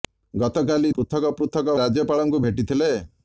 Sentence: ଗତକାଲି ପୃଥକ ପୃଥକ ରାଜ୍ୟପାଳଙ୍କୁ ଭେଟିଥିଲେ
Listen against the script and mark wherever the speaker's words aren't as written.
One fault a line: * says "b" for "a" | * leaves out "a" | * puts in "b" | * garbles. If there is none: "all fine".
all fine